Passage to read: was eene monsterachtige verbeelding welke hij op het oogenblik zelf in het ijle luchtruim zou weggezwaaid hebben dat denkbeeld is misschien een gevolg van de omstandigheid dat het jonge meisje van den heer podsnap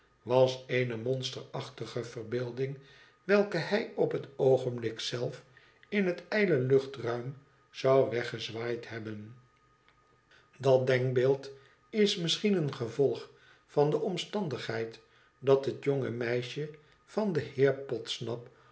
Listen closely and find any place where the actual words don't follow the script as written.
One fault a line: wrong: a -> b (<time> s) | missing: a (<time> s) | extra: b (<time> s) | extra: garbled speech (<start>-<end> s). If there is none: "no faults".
no faults